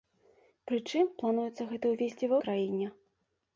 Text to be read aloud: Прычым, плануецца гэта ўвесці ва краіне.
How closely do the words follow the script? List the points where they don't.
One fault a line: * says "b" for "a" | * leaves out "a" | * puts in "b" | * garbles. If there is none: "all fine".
all fine